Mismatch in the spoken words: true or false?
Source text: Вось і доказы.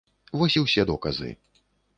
true